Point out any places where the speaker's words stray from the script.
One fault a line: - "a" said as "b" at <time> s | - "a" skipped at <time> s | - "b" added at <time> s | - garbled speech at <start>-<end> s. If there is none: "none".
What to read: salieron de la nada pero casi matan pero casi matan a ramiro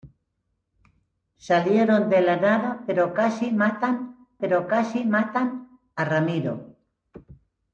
none